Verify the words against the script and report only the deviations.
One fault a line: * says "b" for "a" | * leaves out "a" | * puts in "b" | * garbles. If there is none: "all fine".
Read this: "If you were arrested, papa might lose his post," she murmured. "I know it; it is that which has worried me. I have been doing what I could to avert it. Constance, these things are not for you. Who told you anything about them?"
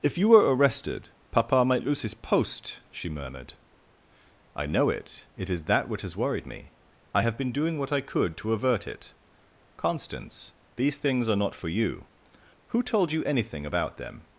all fine